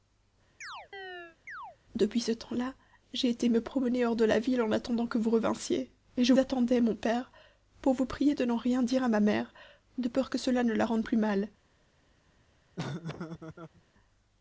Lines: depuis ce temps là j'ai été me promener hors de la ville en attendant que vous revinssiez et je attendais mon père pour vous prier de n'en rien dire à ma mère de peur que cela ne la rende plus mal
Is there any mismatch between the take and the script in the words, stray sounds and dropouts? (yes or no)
yes